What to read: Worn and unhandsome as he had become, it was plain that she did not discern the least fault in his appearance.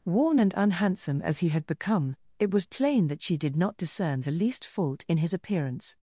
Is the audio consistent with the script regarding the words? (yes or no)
yes